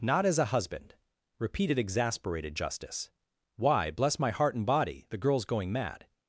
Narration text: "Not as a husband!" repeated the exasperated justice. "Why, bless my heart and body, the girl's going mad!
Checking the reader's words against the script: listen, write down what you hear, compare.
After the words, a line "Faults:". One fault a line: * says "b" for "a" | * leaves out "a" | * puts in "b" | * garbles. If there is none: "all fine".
"Not as a husband!" repeated exasperated justice. "Why, bless my heart and body, the girl's going mad!
Faults:
* leaves out "the"